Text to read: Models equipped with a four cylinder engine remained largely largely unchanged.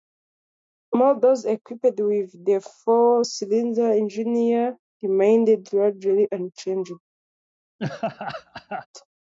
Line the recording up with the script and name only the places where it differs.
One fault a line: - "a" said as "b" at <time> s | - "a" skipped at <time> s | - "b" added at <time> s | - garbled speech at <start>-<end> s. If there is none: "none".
- "a" said as "the" at 2.4 s
- "largely" skipped at 6.3 s